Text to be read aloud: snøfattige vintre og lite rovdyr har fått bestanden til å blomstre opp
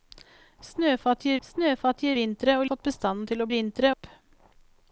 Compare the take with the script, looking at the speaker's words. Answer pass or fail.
fail